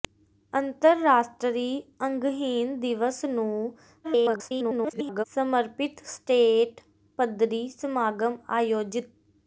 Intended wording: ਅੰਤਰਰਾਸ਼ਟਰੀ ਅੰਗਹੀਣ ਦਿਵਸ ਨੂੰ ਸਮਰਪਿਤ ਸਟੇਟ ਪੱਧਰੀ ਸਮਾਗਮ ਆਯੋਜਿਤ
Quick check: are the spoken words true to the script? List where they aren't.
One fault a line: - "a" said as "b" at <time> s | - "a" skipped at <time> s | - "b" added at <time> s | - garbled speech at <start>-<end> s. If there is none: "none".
- garbled speech at 4.0-5.2 s